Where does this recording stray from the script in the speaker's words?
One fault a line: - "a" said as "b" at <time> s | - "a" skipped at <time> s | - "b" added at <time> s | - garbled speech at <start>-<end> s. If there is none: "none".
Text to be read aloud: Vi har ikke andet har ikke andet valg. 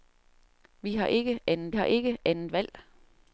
none